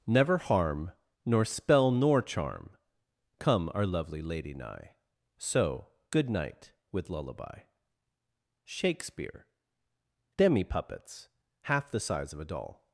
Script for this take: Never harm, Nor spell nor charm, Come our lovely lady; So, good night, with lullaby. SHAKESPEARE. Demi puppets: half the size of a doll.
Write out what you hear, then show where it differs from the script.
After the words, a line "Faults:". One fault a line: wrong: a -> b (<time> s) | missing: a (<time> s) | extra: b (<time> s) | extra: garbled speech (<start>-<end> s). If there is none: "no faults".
Never harm, Nor spell nor charm, Come our lovely lady nigh; So, good night, with lullaby. SHAKESPEARE. Demi puppets: half the size of a doll.
Faults:
extra: nigh (4.5 s)